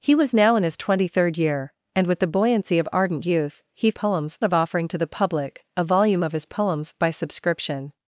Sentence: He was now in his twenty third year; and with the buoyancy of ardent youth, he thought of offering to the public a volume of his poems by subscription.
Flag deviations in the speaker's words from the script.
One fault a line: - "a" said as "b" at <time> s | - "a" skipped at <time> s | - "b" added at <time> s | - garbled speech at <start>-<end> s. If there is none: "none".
- "thought" said as "poems" at 3.9 s